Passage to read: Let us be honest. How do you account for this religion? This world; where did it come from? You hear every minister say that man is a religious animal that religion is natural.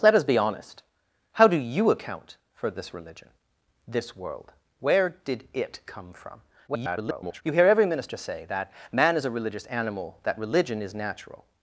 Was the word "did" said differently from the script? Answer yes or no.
no